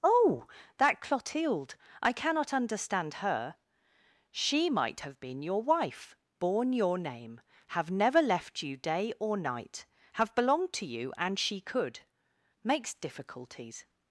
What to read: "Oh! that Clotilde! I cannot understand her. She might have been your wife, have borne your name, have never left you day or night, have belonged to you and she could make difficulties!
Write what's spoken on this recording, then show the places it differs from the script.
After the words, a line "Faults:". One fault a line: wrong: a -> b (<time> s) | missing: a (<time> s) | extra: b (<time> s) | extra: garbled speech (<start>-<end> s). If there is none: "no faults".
"Oh! that Clotilde! I cannot understand her. She might have been your wife, borne your name, have never left you day or night, have belonged to you and she could makes difficulties!
Faults:
missing: have (6.2 s)
wrong: make -> makes (12.6 s)